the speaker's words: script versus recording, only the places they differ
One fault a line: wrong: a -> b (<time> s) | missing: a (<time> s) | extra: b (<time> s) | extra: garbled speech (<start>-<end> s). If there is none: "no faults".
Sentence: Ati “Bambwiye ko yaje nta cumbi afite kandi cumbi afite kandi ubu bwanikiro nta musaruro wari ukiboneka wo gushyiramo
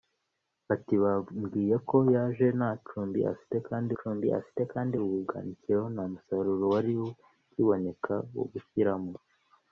no faults